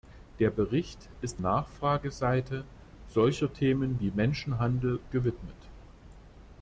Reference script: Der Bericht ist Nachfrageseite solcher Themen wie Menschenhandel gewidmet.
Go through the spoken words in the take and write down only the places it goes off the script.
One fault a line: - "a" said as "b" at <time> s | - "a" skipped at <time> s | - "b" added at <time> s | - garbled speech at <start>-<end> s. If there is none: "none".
none